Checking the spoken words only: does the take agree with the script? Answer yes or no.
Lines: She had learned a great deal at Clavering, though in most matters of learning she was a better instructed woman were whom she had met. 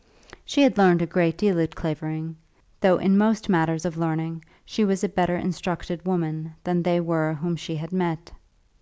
no